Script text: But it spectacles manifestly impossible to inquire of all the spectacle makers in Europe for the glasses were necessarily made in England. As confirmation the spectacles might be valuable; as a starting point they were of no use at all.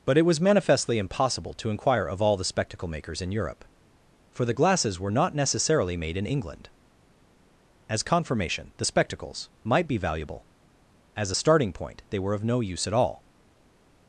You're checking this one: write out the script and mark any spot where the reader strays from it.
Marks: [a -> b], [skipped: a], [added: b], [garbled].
But it [spectacles -> was] manifestly impossible to inquire of all the spectacle makers in Europe for the glasses were [added: not] necessarily made in England. As confirmation the spectacles might be valuable; as a starting point they were of no use at all.